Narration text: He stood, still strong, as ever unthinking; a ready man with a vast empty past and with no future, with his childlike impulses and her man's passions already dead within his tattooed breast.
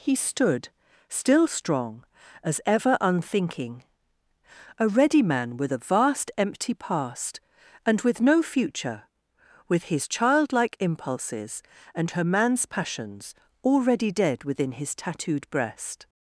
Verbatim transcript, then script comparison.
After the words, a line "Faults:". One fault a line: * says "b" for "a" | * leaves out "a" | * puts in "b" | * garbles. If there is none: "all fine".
He stood, still strong, as ever unthinking; a ready man with a vast empty past and with no future, with his childlike impulses and her man's passions already dead within his tattooed breast.
Faults:
all fine